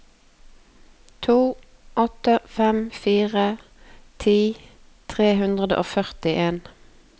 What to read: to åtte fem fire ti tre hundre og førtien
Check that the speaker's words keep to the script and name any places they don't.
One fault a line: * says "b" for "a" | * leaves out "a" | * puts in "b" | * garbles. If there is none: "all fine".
all fine